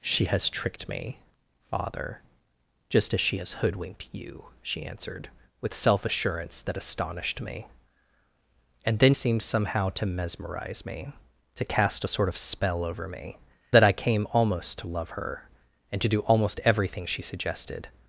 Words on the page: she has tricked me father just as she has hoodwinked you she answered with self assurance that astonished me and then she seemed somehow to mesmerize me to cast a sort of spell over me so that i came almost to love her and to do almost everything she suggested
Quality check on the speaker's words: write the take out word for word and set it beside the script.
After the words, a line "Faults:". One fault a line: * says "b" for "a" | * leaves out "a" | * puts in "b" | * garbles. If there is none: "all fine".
she has tricked me father just as she has hoodwinked you she answered with self assurance that astonished me and then seemed somehow to mesmerize me to cast a sort of spell over me that i came almost to love her and to do almost everything she suggested
Faults:
* leaves out "she"
* leaves out "so"